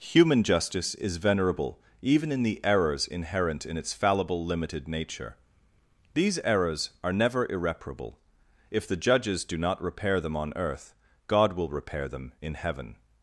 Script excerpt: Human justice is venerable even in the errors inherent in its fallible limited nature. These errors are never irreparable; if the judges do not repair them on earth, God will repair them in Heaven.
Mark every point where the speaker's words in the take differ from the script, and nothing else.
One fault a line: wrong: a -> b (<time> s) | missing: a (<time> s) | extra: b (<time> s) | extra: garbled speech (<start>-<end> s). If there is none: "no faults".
no faults